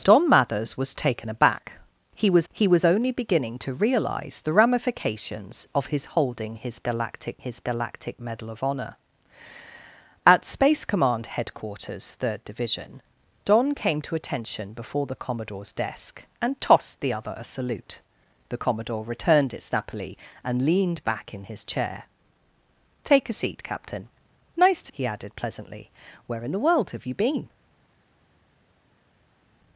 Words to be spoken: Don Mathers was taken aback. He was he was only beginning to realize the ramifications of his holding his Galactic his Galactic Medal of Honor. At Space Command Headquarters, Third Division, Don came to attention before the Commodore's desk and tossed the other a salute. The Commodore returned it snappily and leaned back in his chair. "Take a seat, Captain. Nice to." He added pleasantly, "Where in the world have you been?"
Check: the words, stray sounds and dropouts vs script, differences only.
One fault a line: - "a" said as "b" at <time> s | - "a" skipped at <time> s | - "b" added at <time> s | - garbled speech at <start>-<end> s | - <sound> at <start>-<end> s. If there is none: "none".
none